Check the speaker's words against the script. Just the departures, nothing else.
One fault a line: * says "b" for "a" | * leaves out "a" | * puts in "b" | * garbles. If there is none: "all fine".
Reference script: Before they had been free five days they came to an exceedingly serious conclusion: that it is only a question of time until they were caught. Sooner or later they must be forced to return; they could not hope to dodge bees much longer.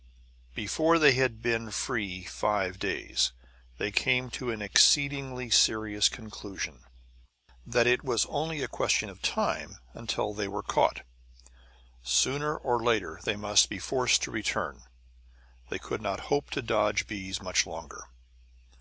* says "was" for "is"